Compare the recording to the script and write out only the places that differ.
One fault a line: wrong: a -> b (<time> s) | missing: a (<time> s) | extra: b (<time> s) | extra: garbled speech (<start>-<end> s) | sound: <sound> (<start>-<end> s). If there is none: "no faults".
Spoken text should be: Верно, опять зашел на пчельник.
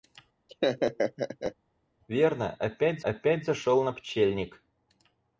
sound: laugh (0.5-1.6 s)
extra: опять (3.0 s)